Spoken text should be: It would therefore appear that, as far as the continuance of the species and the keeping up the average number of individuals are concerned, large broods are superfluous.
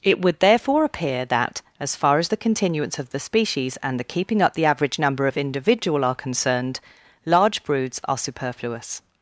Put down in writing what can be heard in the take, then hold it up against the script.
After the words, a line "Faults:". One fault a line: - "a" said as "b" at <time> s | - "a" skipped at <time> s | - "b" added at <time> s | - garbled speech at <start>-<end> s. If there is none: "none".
It would therefore appear that, as far as the continuance of the species and the keeping up the average number of individual are concerned, large broods are superfluous.
Faults:
- "individuals" said as "individual" at 5.4 s